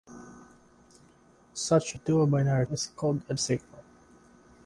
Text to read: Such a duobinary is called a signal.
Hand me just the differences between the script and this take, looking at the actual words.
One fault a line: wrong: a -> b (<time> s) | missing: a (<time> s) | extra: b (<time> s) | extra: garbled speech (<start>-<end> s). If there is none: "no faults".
no faults